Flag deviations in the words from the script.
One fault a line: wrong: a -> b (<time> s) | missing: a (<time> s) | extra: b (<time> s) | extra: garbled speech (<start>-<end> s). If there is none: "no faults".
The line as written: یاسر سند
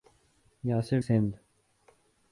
no faults